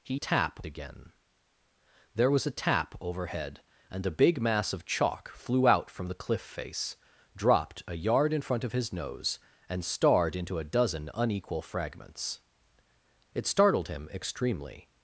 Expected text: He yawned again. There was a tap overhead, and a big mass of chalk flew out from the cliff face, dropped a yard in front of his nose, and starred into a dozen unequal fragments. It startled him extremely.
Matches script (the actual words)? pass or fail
fail